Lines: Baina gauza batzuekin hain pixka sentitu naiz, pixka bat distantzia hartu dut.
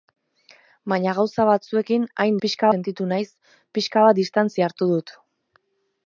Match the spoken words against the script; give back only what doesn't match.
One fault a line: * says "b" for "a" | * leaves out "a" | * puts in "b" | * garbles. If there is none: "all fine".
all fine